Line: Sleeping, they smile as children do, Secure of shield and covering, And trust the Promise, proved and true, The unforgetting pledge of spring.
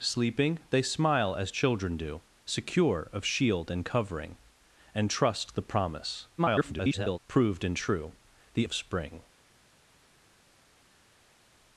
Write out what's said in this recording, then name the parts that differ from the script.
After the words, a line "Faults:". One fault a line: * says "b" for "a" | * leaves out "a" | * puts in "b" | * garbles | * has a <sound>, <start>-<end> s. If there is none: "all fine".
Sleeping, they smile as children do, Secure of shield and covering, And trust the Promise, [garbled] proved and true, The of spring.
Faults:
* garbles
* leaves out "unforgetting pledge"